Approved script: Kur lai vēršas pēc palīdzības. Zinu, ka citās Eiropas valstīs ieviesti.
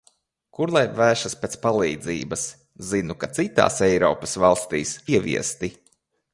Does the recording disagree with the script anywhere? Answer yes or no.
no